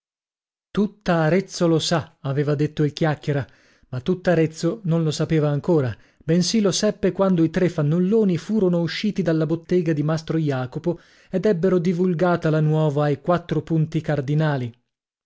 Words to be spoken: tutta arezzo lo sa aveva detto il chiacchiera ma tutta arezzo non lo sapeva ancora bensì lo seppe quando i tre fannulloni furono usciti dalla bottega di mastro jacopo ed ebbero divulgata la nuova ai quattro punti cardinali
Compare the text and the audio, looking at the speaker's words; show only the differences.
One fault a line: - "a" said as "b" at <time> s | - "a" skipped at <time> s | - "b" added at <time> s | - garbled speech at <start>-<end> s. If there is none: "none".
none